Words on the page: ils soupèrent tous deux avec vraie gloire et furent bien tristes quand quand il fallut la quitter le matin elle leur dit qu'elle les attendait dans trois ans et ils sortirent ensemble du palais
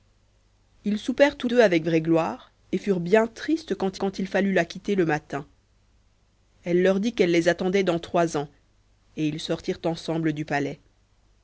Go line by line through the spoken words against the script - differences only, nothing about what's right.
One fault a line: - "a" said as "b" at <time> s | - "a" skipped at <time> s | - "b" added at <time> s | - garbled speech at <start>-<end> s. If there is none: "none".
none